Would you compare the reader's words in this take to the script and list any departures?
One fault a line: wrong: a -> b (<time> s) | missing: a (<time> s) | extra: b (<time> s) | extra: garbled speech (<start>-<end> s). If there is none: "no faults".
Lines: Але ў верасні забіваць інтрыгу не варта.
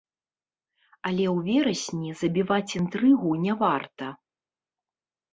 no faults